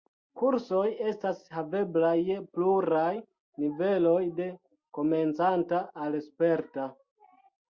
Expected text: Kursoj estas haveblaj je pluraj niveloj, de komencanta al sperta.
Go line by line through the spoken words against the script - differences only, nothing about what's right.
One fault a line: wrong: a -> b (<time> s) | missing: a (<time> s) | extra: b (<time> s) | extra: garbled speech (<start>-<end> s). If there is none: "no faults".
no faults